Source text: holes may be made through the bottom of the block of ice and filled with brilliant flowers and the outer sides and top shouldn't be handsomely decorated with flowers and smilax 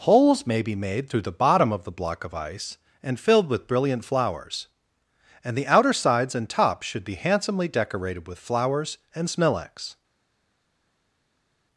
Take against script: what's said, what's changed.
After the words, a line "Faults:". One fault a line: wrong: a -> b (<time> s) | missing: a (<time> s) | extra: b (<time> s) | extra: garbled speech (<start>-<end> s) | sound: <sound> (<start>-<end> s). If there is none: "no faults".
holes may be made through the bottom of the block of ice and filled with brilliant flowers and the outer sides and top should be handsomely decorated with flowers and smilax
Faults:
wrong: shouldn't -> should (6.8 s)